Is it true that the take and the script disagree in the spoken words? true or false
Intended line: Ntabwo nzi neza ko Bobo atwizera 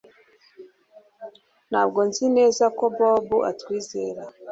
false